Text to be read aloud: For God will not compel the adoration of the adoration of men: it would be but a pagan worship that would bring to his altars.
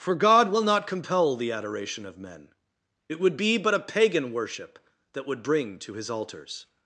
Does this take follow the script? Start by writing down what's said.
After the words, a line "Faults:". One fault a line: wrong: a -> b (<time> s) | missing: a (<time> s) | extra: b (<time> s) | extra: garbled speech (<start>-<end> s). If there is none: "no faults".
For God will not compel the adoration of men: it would be but a pagan worship that would bring to his altars.
Faults:
missing: the adoration of (2.2 s)